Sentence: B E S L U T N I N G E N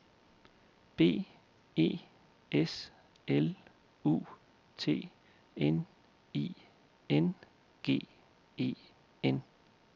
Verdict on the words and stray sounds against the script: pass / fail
pass